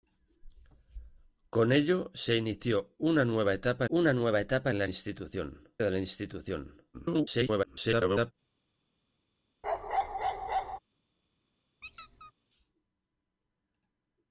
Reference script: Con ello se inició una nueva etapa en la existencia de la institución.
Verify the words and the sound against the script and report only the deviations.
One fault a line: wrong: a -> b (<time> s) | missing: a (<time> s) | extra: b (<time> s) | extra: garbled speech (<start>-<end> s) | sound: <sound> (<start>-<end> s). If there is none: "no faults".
extra: una nueva etapa (3.9 s)
wrong: existencia -> institución (4.8 s)
extra: garbled speech (6.9-8.3 s)
sound: bark (9.6-10.8 s)
sound: squeak (11.8-12.3 s)